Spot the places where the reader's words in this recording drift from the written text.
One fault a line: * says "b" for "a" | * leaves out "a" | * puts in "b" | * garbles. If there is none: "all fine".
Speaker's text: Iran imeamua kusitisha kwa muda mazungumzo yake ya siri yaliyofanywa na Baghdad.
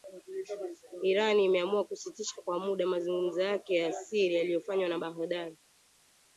all fine